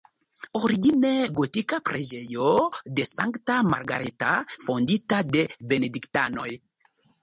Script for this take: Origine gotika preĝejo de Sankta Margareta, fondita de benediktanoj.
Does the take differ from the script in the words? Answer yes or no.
no